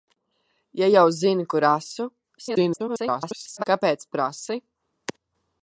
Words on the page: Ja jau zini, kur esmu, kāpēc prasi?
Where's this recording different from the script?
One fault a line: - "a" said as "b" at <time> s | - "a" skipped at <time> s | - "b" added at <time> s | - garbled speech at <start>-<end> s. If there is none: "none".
- garbled speech at 2.4-3.6 s